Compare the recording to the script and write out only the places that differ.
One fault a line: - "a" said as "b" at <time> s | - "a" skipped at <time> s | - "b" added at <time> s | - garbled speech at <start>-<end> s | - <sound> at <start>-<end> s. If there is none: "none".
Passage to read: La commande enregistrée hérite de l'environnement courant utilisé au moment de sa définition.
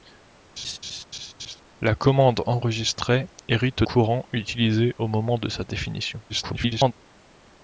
- laugh at 0.6-1.6 s
- "de l'environnement" skipped at 3.8 s
- garbled speech at 6.3-6.9 s